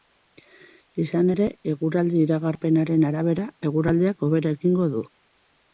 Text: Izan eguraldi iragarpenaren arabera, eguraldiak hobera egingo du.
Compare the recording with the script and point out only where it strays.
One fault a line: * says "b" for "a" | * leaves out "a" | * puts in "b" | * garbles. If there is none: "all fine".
* puts in "ere"